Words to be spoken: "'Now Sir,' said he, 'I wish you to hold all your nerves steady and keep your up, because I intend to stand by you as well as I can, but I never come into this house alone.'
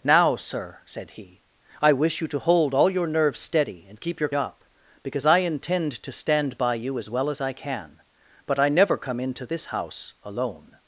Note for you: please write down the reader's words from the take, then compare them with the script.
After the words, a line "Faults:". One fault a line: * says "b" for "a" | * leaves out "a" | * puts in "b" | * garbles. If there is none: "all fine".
"'Now Sir,' said he, 'I wish you to hold all your nerves steady and keep your up, because I intend to stand by you as well as I can, but I never come into this house alone.'
Faults:
all fine